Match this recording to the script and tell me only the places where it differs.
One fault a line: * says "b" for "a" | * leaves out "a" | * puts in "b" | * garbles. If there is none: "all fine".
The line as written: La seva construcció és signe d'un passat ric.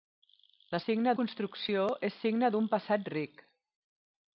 * says "signe" for "seva"